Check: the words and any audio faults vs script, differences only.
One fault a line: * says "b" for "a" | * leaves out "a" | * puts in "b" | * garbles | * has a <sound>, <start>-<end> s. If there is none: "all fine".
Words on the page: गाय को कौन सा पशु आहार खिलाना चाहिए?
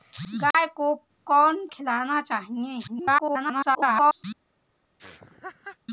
* has a dropout, 0.5-0.5 s
* leaves out "सा पशु आहार"
* garbles
* has a laugh, 5.0-5.8 s